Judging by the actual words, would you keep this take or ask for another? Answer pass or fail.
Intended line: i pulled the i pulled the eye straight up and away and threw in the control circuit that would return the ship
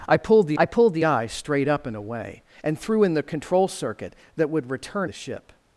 pass